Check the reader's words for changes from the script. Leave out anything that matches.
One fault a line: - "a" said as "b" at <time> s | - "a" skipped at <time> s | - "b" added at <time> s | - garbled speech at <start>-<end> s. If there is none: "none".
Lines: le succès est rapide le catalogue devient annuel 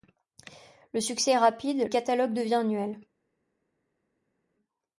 - "le" skipped at 1.9 s